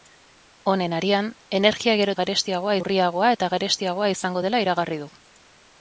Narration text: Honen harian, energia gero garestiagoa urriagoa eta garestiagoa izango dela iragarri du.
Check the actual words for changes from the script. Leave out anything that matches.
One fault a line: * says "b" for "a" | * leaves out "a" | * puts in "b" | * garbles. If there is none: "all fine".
all fine